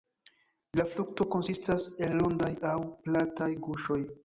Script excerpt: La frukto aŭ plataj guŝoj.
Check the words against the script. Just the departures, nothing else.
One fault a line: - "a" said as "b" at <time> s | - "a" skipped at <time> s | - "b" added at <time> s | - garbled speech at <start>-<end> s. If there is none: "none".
- "konsistas el rondaj" added at 1.4 s